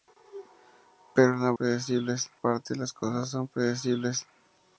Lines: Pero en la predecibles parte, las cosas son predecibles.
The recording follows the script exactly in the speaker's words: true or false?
true